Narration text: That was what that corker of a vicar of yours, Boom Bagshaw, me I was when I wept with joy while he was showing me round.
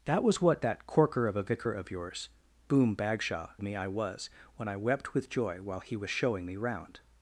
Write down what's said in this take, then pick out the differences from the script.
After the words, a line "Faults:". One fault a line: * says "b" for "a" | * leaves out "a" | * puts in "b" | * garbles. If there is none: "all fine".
That was what that corker of a vicar of yours, Boom Bagshaw, me I was when I wept with joy while he was showing me round.
Faults:
all fine